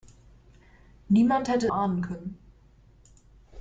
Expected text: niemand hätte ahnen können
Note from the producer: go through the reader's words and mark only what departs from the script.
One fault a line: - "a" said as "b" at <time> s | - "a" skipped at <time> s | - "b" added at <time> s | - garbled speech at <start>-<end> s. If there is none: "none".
none